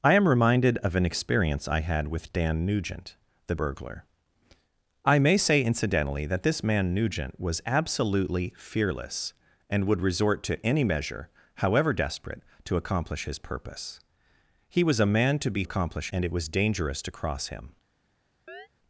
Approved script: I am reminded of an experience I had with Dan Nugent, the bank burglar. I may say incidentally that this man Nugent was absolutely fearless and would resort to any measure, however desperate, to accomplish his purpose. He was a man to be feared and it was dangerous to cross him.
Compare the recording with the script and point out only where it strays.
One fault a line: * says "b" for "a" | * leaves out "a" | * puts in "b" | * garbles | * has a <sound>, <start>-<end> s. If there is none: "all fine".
* leaves out "bank"
* says "accomplish" for "feared"
* has a chirp, 18.5-18.7 s